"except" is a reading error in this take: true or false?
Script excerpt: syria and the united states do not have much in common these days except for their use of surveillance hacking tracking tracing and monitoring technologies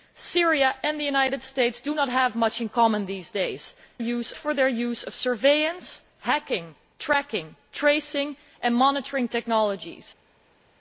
true